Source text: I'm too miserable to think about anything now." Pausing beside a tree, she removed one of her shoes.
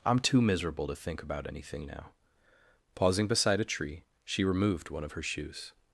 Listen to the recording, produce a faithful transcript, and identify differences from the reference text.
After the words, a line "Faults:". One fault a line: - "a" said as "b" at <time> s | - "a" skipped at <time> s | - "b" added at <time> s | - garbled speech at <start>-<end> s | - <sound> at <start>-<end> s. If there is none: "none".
I'm too miserable to think about anything now." Pausing beside a tree, she removed one of her shoes.
Faults:
none